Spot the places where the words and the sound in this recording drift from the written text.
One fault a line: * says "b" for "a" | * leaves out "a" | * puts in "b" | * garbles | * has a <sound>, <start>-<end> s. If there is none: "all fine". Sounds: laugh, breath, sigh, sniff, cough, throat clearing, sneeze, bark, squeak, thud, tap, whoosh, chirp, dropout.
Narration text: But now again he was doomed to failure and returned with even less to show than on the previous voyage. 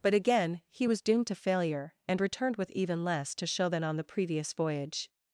* leaves out "now"